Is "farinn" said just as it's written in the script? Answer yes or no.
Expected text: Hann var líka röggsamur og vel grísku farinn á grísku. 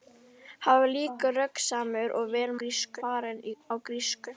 yes